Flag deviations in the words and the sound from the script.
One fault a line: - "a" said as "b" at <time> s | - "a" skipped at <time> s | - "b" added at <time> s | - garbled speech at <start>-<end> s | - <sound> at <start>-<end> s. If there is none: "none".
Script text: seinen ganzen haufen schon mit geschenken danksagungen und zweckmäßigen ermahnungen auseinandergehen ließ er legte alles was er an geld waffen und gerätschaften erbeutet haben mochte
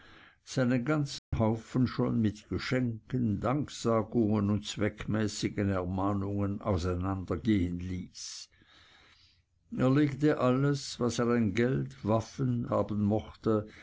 - dropout at 1.2-1.3 s
- "und gerätschaften erbeutet" skipped at 12.6 s